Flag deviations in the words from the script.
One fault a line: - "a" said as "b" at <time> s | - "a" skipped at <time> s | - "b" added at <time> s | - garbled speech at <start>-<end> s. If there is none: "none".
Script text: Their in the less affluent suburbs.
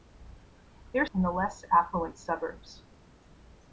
none